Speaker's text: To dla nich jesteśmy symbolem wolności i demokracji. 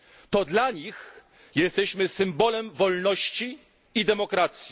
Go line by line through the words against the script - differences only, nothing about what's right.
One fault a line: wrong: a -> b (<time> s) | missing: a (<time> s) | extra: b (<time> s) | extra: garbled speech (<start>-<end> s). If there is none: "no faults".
no faults